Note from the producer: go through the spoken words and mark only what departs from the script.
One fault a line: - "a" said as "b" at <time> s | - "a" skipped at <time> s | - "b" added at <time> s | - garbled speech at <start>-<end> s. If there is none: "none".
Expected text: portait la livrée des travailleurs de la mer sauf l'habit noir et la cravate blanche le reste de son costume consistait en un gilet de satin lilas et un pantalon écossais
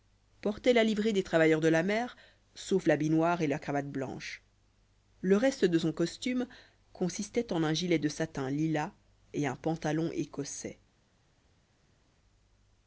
none